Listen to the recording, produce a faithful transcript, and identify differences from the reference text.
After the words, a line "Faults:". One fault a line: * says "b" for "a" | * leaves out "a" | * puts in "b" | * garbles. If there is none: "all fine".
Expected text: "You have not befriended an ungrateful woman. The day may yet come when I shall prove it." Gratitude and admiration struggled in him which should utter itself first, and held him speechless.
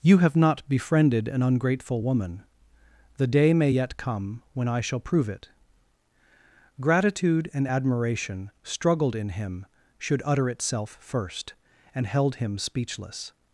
"You have not befriended an ungrateful woman. The day may yet come when I shall prove it." Gratitude and admiration struggled in him should utter itself first, and held him speechless.
Faults:
* leaves out "which"